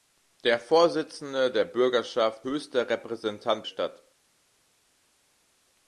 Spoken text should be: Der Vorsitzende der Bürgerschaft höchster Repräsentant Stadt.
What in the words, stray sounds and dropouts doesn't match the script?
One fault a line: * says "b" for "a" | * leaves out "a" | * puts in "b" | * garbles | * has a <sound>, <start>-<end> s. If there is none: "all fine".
all fine